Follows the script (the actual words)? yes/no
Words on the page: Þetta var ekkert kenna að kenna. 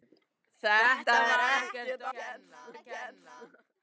yes